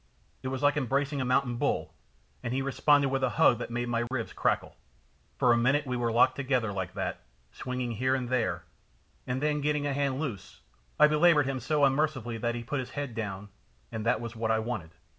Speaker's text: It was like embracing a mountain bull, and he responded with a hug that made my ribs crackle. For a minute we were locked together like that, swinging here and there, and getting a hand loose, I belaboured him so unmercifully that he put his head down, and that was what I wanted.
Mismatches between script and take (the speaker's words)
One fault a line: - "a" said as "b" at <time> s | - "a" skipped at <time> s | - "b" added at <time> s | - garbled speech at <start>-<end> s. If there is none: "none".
- "then" added at 9.4 s